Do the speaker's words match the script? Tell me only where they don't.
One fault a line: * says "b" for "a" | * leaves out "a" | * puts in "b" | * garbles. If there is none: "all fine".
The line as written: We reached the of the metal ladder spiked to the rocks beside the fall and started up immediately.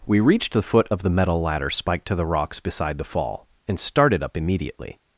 * puts in "foot"